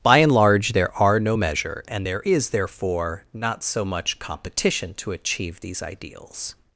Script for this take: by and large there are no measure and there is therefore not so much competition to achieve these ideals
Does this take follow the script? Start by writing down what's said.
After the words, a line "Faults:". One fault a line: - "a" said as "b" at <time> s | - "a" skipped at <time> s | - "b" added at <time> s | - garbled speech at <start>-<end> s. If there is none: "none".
by and large there are no measure and there is therefore not so much competition to achieve these ideals
Faults:
none